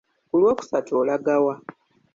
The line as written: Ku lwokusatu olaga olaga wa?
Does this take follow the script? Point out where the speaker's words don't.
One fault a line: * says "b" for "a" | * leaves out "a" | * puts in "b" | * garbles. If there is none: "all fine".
* leaves out "olaga"